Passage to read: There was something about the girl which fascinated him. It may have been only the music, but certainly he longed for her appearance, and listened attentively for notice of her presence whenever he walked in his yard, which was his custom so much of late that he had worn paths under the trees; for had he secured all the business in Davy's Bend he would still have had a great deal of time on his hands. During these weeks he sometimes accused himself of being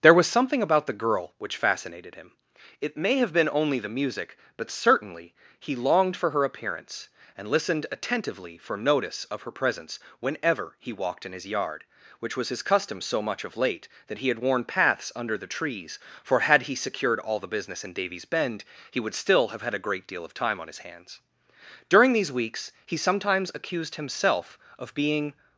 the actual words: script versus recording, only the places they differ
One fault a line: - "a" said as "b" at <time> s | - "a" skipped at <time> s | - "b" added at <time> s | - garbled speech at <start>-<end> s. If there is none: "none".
none